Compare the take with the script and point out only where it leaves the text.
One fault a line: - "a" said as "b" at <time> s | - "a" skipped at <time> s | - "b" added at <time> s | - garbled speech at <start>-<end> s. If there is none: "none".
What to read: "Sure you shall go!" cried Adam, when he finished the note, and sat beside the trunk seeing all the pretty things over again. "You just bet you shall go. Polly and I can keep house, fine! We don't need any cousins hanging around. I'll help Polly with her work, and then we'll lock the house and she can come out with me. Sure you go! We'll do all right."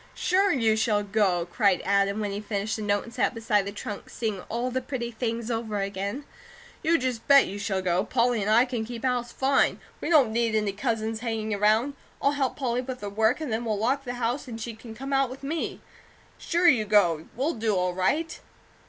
none